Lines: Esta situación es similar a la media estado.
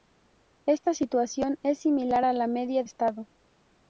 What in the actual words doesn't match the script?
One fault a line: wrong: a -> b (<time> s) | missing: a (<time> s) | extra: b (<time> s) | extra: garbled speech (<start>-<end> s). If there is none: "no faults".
no faults